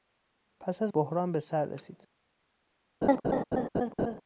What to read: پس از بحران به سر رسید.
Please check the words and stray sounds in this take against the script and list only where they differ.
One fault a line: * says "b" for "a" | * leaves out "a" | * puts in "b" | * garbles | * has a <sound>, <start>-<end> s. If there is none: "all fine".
* has a laugh, 3.0-4.2 s